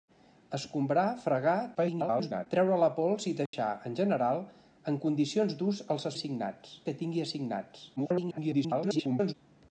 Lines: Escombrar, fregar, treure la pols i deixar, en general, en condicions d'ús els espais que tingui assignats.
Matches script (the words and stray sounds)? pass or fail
fail